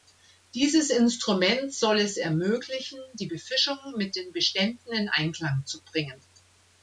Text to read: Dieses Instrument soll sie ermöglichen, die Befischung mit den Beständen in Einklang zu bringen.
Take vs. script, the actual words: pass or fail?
fail